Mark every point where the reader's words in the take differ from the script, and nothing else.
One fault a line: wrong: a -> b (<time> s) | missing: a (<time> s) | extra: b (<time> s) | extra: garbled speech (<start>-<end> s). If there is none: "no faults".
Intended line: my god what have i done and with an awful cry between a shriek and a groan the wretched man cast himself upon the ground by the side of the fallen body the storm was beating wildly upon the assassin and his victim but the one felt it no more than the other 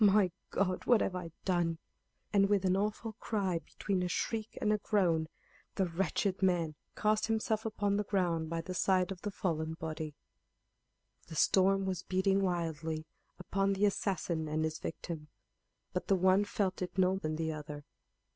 missing: more (17.1 s)